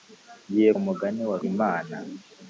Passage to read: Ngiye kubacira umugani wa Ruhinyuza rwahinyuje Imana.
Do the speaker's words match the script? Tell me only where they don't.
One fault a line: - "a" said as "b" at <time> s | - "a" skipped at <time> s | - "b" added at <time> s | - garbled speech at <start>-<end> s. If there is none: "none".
- "kubacira" skipped at 0.7 s
- "Ruhinyuza rwahinyuje" skipped at 1.4 s